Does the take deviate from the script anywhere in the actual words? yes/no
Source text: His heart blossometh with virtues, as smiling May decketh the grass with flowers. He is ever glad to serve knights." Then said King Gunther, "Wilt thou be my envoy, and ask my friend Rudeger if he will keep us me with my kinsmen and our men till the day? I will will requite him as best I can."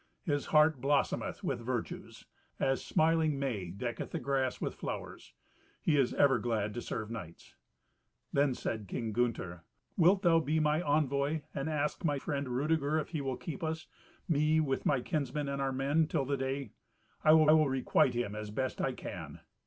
no